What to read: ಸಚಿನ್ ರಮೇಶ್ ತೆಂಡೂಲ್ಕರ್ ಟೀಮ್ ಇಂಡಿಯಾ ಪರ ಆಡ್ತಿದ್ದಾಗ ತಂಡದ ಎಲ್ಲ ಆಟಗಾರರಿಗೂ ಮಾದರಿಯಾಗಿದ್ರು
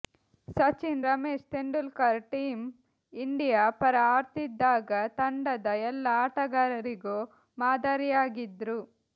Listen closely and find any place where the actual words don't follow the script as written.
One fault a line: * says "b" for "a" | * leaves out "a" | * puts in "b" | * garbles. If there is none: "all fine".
all fine